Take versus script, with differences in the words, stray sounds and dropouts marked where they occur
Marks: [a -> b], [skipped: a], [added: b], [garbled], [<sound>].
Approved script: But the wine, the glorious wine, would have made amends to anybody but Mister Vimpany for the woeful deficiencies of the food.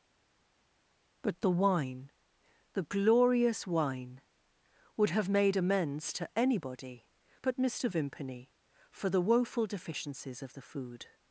But the wine, the glorious wine, would have made amends to anybody but Mister Vimpany for the woeful deficiencies of the food.